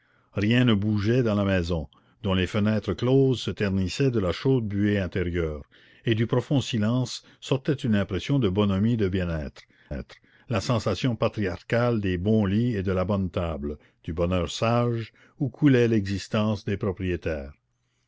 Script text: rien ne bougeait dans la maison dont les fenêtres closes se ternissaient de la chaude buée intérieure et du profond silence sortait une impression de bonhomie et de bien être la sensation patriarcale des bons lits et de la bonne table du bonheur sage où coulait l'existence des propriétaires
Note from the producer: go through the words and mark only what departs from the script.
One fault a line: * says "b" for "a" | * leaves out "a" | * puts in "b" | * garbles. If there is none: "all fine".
* puts in "être"